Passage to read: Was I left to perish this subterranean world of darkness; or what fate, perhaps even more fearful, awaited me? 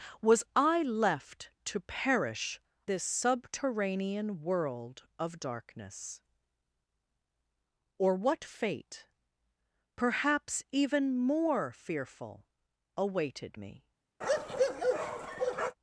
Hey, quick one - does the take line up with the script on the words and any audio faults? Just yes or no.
no